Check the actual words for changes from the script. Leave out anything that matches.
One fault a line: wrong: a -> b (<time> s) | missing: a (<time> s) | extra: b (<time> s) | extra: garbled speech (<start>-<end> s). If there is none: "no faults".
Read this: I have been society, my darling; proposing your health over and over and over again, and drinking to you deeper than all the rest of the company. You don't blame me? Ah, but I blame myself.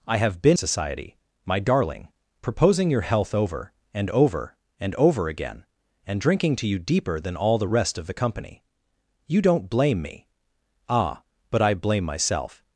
no faults